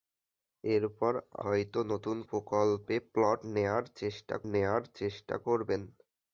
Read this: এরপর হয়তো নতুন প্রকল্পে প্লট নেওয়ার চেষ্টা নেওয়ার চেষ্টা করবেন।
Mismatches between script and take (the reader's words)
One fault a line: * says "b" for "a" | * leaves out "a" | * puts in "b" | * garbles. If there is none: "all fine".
all fine